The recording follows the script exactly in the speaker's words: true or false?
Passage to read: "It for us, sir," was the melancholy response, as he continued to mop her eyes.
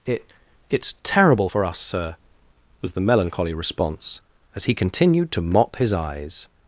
false